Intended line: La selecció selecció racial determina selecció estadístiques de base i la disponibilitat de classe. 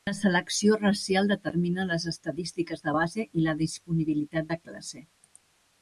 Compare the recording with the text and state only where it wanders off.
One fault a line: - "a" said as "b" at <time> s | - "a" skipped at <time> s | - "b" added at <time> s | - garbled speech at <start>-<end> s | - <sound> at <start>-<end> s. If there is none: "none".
- "selecció" skipped at 0.8 s
- "selecció" said as "les" at 1.9 s